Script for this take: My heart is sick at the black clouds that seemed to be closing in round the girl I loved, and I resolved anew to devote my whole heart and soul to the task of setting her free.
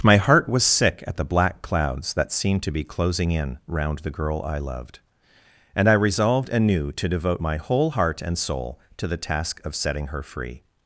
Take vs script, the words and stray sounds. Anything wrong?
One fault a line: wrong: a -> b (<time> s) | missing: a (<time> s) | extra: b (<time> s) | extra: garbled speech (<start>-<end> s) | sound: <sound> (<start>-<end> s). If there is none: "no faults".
wrong: is -> was (0.5 s)